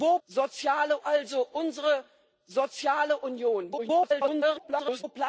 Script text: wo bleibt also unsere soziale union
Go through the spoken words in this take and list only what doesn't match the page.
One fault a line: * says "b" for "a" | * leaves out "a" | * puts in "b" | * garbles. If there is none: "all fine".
* says "soziale" for "bleibt"
* garbles